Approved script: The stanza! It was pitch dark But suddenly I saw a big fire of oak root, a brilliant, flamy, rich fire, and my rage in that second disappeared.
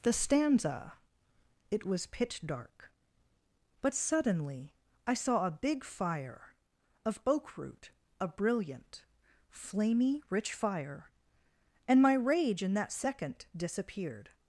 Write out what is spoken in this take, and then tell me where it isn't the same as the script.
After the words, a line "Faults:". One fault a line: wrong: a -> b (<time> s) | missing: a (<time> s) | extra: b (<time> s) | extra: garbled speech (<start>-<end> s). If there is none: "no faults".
The stanza! It was pitch dark But suddenly I saw a big fire of oak root, a brilliant, flamy, rich fire, and my rage in that second disappeared.
Faults:
no faults